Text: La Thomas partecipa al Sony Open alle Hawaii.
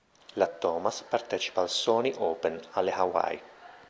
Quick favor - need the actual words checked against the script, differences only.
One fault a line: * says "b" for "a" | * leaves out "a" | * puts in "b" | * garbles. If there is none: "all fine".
all fine